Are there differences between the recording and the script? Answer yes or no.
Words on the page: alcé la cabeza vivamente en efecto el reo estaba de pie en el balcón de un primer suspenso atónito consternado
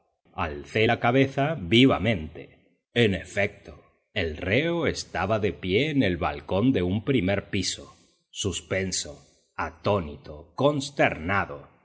yes